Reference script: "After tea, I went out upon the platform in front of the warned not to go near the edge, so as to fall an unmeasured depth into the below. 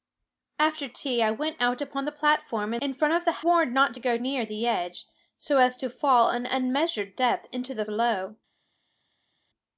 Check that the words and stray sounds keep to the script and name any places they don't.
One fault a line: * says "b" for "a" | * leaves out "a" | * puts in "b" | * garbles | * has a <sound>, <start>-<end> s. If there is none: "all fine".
all fine